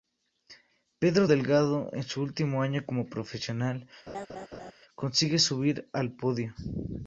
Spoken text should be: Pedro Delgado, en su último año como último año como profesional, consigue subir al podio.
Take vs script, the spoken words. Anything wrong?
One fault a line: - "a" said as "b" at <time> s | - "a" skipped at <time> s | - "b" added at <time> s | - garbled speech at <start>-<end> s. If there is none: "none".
- "último año como" skipped at 3.1 s